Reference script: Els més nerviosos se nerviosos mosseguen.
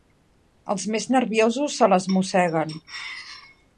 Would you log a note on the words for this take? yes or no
yes